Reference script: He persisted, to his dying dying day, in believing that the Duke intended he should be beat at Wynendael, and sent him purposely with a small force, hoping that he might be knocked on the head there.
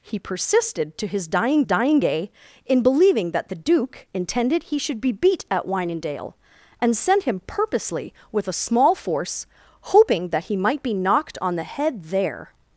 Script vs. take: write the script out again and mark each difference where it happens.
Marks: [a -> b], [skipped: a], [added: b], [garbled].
He persisted, to his dying dying day, in believing that the Duke intended he should be beat at Wynendael, and sent him purposely with a small force, hoping that he might be knocked on the head there.